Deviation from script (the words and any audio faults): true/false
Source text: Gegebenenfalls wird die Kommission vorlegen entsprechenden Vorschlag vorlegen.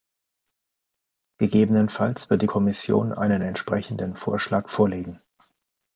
true